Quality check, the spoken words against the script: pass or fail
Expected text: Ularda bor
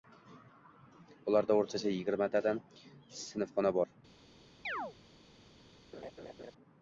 fail